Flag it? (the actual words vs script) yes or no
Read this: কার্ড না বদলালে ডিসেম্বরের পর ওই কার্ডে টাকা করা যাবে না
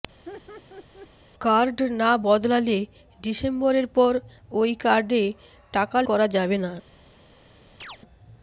no